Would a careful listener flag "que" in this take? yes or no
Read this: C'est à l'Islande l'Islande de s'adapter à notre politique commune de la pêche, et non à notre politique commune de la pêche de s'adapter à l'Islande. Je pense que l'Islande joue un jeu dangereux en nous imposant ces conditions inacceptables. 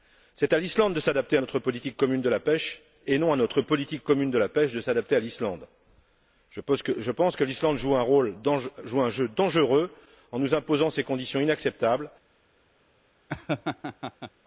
no